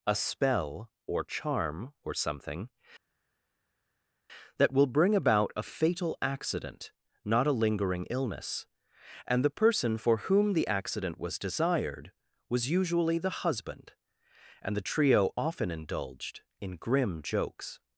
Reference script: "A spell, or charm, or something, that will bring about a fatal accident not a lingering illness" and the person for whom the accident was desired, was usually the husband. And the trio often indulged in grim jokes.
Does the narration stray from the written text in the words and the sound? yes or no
no